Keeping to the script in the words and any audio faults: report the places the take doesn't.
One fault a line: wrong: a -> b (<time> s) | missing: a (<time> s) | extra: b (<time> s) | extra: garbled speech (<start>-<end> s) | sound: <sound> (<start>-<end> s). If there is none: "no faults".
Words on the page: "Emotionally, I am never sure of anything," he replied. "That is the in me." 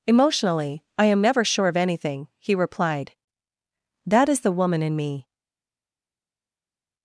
extra: woman (4.5 s)